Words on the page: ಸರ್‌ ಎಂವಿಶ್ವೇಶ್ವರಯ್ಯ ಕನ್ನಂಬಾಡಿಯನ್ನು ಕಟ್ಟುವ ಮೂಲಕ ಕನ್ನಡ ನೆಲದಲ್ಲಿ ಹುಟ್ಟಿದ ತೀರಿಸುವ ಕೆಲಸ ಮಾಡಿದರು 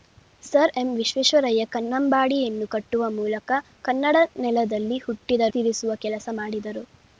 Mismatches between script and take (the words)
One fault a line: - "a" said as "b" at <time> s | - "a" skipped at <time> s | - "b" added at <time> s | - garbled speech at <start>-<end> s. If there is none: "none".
none